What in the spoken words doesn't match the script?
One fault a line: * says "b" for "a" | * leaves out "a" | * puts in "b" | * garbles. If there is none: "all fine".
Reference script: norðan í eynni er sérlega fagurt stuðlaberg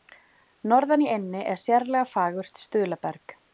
all fine